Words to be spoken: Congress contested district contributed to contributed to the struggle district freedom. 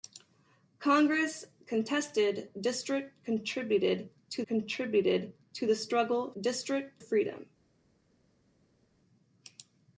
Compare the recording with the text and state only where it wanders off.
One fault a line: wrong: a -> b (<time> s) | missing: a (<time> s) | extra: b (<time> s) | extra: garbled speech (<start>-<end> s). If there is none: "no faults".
no faults